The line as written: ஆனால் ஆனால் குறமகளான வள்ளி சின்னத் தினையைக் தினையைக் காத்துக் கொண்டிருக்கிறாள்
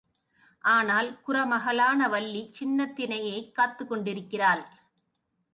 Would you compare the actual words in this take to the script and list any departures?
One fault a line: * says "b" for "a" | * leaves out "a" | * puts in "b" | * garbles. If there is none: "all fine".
* leaves out "ஆனால்"
* leaves out "தினையைக்"